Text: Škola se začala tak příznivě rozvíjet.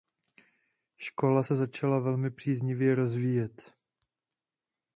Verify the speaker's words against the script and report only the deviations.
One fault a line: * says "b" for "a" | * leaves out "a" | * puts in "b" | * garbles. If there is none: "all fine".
* says "velmi" for "tak"